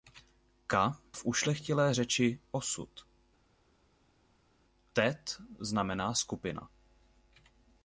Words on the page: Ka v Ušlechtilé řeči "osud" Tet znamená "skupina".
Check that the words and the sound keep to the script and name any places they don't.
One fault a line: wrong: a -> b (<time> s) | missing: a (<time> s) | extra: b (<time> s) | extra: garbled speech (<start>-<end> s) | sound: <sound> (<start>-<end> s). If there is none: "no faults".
no faults